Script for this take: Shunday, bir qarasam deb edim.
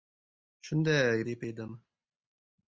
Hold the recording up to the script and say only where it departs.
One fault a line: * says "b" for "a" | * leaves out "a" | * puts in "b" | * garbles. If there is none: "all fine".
* leaves out "bir qarasam"